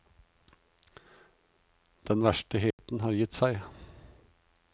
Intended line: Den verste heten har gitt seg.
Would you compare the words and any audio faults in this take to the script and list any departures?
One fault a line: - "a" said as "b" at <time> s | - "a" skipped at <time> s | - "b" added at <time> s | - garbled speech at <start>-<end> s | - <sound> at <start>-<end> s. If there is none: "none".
- dropout at 2.7-2.8 s